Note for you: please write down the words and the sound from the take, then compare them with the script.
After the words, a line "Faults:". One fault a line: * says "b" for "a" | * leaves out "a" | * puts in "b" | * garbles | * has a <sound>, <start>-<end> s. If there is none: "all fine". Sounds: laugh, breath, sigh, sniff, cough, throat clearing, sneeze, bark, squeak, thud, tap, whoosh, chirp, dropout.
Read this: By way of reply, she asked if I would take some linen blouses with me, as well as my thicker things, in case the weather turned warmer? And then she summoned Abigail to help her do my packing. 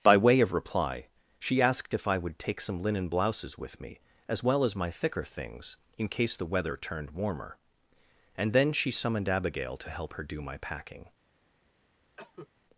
By way of reply, she asked if I would take some linen blouses with me, as well as my thicker things, in case the weather turned warmer? And then she summoned Abigail to help her do my packing.
Faults:
* has a cough, 12.2-12.5 s